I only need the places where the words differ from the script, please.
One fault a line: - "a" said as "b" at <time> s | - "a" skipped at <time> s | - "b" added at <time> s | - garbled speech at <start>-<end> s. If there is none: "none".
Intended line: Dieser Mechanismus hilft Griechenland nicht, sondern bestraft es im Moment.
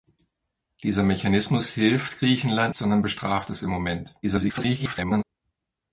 - "nicht" skipped at 2.8 s
- garbled speech at 4.2-5.2 s